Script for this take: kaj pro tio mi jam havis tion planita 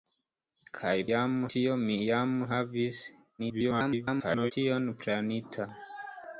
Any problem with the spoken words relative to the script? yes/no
yes